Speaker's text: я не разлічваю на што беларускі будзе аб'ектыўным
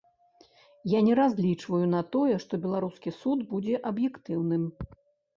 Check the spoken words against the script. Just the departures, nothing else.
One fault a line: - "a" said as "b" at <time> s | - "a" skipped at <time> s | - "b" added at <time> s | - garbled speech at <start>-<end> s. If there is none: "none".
- "тое" added at 2.1 s
- "суд" added at 3.2 s